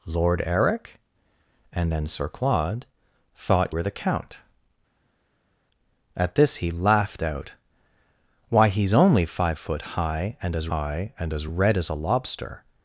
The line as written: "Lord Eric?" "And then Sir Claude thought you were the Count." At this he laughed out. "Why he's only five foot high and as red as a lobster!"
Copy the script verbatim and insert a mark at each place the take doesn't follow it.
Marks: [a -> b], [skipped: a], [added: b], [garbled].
"Lord Eric?" "And then Sir Claude thought [skipped: you] were the Count." At this he laughed out. "Why he's only five foot high and as [added: high and as] red as a lobster!"